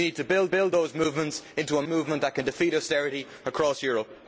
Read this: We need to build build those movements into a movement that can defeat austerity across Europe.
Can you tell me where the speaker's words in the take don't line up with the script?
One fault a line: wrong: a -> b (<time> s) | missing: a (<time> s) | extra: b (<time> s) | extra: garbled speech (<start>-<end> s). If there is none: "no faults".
no faults